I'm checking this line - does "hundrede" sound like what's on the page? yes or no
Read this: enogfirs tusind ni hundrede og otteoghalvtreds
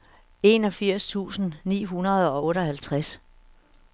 yes